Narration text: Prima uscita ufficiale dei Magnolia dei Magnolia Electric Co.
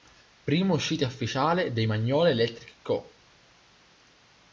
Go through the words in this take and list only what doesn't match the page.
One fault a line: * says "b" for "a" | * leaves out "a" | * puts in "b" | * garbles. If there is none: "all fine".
* leaves out "dei Magnolia"